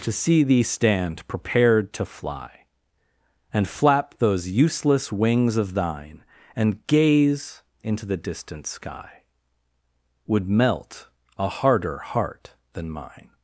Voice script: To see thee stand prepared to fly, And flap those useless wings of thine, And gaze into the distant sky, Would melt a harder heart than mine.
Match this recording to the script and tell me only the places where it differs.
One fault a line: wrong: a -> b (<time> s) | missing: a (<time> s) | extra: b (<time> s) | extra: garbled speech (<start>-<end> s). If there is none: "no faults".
no faults